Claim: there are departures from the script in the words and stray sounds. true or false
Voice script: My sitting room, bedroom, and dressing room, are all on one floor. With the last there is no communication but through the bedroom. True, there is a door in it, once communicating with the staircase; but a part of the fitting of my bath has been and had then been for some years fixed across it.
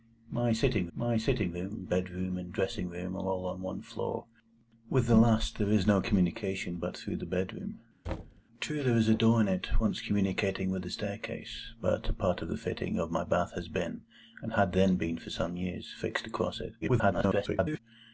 true